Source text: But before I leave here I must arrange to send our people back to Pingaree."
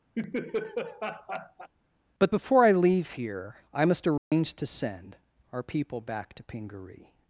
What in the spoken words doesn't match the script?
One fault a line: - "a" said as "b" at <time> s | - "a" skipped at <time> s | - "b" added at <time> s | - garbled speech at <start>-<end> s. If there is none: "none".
none